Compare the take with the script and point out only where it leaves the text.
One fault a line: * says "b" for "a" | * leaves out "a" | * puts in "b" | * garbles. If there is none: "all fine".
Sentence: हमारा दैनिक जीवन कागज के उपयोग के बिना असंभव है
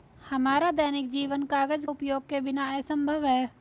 * leaves out "के"